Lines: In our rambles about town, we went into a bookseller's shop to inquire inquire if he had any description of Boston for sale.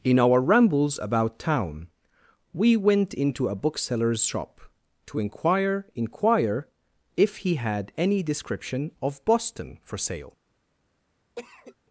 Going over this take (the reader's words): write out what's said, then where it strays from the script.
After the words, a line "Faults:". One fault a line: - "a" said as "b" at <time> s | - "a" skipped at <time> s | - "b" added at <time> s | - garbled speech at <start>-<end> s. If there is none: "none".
In our rambles about town, we went into a bookseller's shop to inquire inquire if he had any description of Boston for sale.
Faults:
none